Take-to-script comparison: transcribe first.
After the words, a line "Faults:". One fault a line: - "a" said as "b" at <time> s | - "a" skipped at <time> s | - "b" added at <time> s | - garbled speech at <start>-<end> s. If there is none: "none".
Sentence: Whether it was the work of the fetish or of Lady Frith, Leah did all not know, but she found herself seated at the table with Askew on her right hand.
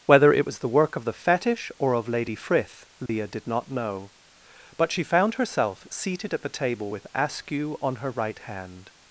Whether it was the work of the fetish or of Lady Frith, Leah did not know, but she found herself seated at the table with Askew on her right hand.
Faults:
- "all" skipped at 3.5 s